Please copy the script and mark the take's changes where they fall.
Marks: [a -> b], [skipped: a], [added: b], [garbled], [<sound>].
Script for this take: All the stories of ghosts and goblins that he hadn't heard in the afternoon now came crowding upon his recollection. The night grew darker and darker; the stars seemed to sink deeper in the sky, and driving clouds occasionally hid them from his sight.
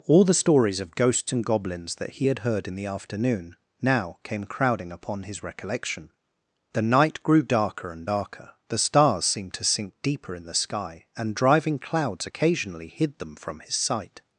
All the stories of ghosts and goblins that he [hadn't -> had] heard in the afternoon now came crowding upon his recollection. The night grew darker and darker; the stars seemed to sink deeper in the sky, and driving clouds occasionally hid them from his sight.